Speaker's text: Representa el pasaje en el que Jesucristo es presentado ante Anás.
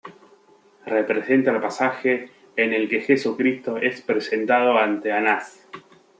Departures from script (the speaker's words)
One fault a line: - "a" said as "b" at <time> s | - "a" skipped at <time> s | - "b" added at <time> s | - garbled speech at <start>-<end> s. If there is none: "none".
none